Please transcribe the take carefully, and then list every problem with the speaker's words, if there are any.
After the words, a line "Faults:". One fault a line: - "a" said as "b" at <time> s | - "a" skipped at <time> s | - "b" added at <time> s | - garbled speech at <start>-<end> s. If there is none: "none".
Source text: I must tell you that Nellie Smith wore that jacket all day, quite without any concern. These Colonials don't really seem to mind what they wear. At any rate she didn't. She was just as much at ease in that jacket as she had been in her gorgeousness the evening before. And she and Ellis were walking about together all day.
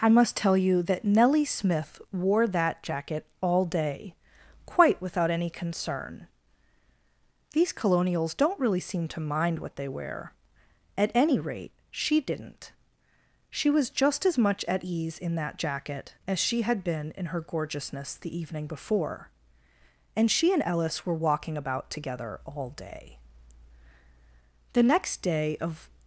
I must tell you that Nellie Smith wore that jacket all day, quite without any concern. These Colonials don't really seem to mind what they wear. At any rate she didn't. She was just as much at ease in that jacket as she had been in her gorgeousness the evening before. And she and Ellis were walking about together all day. The next day of
Faults:
- "The next day of" added at 24.7 s